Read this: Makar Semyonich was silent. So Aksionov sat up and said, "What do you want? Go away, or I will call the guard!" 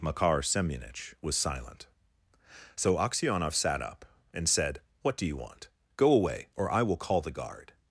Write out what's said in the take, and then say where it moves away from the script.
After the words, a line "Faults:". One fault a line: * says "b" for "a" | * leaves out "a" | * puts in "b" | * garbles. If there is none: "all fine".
Makar Semyonich was silent. So Aksionov sat up and said, "What do you want? Go away, or I will call the guard!"
Faults:
all fine